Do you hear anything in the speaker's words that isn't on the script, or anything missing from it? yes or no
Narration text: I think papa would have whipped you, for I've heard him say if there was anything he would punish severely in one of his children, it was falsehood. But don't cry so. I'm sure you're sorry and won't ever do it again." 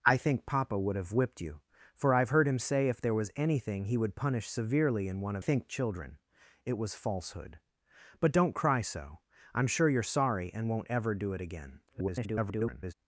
yes